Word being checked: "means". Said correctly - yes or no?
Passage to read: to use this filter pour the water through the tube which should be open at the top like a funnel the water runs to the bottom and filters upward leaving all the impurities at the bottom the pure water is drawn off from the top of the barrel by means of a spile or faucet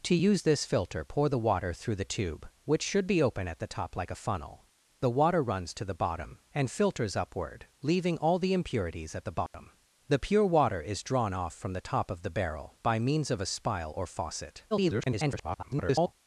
yes